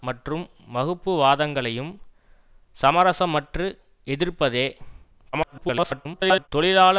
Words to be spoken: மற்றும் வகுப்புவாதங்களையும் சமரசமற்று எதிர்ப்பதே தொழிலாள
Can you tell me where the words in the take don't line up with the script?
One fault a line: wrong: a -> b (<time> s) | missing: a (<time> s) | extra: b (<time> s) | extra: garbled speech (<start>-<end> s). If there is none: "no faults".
extra: garbled speech (5.3-6.5 s)